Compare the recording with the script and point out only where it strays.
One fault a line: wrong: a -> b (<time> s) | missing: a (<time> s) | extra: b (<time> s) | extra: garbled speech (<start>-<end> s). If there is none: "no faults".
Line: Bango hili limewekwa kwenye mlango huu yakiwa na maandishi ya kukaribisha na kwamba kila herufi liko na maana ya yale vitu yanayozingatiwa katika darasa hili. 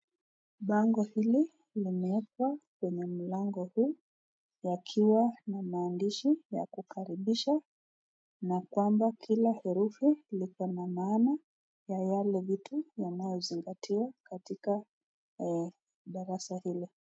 no faults